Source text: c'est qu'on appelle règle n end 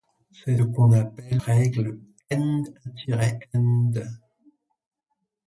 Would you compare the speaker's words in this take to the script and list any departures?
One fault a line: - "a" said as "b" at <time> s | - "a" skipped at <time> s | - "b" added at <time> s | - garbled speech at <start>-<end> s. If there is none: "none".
none